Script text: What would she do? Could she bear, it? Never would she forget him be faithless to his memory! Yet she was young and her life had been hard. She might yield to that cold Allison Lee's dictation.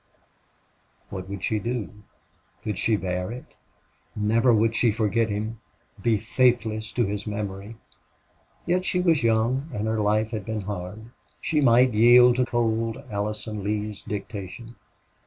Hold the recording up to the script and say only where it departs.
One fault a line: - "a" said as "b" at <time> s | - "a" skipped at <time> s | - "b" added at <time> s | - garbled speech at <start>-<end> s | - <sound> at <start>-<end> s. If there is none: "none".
- "that" skipped at 12.4 s